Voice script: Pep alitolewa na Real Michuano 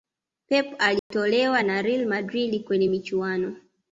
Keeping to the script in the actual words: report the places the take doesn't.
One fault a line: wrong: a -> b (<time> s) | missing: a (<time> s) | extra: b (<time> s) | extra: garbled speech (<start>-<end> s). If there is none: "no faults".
extra: Madrid kwenye (2.0 s)